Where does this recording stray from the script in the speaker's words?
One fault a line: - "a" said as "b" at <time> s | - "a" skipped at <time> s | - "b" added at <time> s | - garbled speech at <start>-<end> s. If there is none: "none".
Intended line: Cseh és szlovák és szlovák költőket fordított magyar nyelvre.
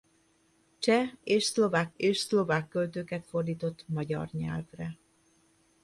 none